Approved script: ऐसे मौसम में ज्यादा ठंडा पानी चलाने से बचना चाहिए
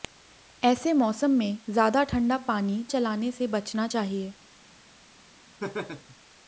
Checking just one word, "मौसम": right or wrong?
right